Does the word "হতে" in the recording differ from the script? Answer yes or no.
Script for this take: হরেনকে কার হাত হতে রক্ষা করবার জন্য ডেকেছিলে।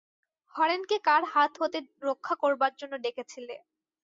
no